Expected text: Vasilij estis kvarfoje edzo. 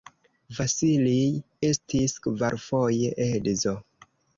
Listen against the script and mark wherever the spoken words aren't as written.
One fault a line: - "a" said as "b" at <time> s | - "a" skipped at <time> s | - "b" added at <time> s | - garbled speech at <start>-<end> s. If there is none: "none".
none